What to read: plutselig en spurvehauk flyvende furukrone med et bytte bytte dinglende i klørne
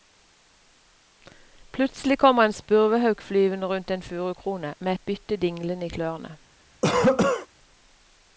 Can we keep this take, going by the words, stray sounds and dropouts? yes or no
no